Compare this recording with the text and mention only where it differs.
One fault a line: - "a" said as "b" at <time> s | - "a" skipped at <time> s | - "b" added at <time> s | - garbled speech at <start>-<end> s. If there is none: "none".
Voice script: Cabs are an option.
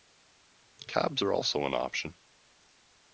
- "also" added at 1.3 s